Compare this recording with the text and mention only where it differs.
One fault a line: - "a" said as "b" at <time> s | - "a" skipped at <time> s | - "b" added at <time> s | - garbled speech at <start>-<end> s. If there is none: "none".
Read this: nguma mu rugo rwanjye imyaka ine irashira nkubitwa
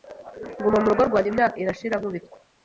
- "ine" skipped at 1.6 s